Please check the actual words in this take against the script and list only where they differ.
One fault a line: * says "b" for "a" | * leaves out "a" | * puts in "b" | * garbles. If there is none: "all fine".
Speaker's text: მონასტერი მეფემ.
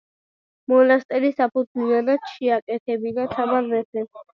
* puts in "საფუძვლიანად შეაკეთებინა თამარ"